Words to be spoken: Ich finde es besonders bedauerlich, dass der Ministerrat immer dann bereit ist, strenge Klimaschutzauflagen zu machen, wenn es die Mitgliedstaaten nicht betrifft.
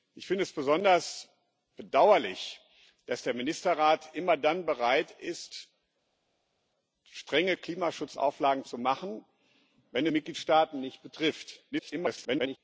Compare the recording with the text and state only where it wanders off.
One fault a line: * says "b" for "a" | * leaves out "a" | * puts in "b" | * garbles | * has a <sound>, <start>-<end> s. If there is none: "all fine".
* leaves out "es die"
* garbles